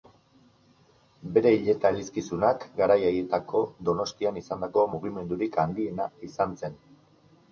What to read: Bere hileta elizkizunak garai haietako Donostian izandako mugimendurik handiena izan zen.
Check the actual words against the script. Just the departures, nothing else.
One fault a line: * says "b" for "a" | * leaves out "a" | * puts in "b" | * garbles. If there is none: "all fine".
all fine